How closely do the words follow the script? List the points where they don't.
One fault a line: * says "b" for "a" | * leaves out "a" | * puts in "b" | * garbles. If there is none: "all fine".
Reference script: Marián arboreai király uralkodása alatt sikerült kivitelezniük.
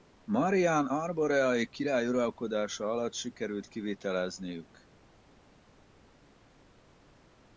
all fine